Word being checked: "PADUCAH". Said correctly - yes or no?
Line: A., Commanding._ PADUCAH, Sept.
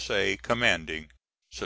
no